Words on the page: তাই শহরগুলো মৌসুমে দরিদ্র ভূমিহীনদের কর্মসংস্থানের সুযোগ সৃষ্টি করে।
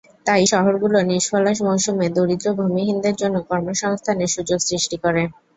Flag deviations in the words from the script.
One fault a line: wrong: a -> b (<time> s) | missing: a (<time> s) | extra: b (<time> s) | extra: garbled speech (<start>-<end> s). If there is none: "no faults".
extra: নিষ্ফলা (1.0 s)
extra: জন্য (3.2 s)